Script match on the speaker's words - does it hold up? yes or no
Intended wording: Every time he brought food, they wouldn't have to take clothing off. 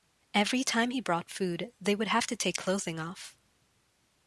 no